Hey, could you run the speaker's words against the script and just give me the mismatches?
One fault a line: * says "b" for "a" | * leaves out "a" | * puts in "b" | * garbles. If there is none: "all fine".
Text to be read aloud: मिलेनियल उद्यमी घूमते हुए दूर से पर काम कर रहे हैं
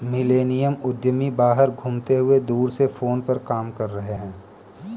* puts in "बाहर"
* puts in "फोन"